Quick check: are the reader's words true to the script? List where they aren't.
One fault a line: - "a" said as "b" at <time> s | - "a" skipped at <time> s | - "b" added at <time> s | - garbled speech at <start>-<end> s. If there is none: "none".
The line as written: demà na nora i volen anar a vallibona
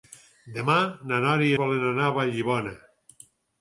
none